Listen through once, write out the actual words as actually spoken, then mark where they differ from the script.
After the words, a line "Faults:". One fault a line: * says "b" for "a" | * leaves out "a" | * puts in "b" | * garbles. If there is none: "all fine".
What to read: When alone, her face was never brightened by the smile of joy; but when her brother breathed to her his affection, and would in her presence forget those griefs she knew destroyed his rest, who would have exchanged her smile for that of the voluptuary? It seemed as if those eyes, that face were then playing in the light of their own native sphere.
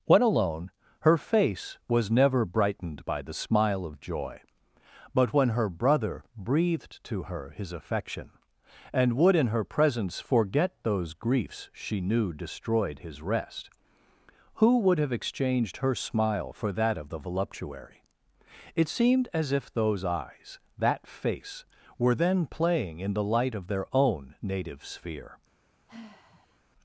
When alone, her face was never brightened by the smile of joy; but when her brother breathed to her his affection, and would in her presence forget those griefs she knew destroyed his rest, who would have exchanged her smile for that of the voluptuary? It seemed as if those eyes, that face were then playing in the light of their own native sphere.
Faults:
all fine